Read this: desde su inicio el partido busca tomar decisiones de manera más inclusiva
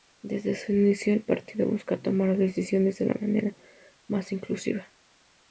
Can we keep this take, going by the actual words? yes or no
no